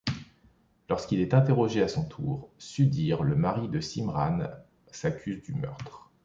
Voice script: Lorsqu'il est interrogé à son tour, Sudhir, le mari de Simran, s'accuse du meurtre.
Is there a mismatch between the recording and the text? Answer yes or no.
no